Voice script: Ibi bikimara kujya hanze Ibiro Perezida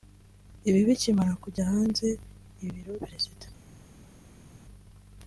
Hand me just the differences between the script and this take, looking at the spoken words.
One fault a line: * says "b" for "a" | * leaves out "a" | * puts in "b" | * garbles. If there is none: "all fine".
all fine